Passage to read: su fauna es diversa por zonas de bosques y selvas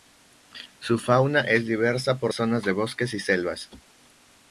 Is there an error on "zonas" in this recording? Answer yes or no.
no